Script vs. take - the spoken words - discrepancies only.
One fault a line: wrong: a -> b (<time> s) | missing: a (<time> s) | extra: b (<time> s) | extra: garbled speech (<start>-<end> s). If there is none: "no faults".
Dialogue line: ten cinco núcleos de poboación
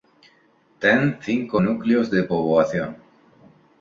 no faults